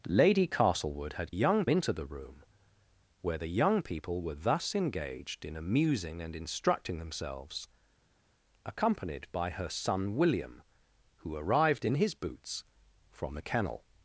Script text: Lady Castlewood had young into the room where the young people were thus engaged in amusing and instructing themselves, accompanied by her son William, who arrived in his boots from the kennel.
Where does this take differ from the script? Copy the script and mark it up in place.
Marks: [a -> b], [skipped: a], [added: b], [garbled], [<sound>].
Lady Castlewood had young into the room where the young people were thus engaged in amusing and instructing themselves, accompanied by her son William, who arrived in his boots from the kennel.